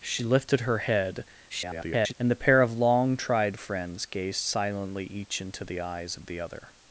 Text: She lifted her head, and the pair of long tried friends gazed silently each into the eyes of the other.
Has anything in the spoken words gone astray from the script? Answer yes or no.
yes